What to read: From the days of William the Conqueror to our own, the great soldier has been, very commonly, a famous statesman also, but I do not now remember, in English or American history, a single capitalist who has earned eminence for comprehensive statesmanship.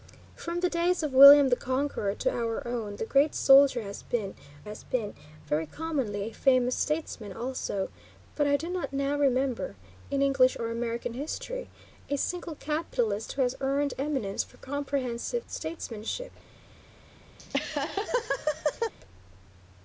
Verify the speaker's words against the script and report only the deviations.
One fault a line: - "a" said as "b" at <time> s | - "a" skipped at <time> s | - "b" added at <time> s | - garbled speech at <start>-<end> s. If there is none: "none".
- "has been" added at 4.6 s